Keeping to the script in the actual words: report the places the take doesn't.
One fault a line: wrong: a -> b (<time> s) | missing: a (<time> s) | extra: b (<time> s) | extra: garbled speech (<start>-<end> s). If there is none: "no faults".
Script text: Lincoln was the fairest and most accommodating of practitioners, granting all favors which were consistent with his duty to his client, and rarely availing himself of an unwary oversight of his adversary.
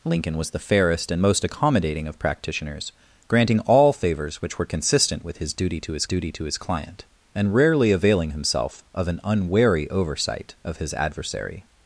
extra: duty to his (6.0 s)